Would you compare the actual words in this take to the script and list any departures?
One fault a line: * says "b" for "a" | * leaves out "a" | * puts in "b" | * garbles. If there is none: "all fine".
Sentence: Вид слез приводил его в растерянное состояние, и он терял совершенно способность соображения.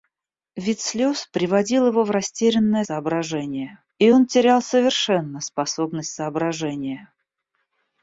* says "соображения" for "состояние"